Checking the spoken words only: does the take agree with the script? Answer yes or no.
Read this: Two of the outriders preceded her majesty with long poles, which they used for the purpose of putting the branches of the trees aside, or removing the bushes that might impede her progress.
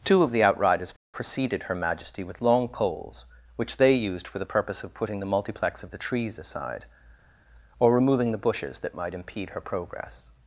no